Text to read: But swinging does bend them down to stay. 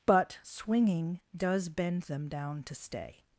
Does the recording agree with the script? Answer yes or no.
yes